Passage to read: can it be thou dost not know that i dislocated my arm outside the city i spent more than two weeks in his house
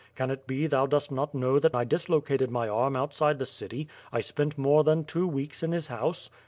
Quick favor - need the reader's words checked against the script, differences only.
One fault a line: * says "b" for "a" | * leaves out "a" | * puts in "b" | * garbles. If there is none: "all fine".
all fine